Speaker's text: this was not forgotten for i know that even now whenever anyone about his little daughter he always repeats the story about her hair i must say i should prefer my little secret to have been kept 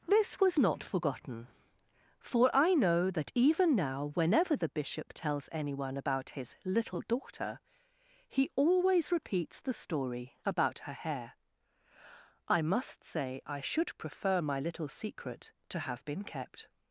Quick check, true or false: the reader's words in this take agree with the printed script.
false